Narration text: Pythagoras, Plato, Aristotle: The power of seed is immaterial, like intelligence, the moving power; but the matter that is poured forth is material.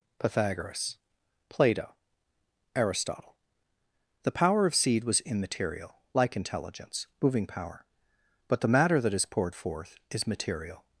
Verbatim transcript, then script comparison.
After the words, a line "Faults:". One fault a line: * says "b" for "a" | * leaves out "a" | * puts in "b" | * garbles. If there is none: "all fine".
Pythagoras, Plato, Aristotle: The power of seed was immaterial, like intelligence, moving power; but the matter that is poured forth is material.
Faults:
* says "was" for "is"
* leaves out "the"